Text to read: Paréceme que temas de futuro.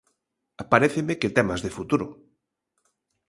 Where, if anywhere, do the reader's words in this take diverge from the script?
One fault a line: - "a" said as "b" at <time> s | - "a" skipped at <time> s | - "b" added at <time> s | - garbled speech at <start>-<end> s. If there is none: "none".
none